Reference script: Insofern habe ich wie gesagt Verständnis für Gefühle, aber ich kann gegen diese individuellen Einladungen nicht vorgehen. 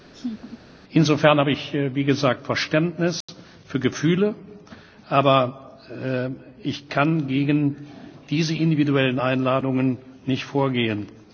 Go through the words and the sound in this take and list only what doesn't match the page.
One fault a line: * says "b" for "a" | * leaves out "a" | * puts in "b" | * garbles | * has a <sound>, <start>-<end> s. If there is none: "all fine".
* has a laugh, 0.1-0.6 s
* has a dropout, 3.2-3.3 s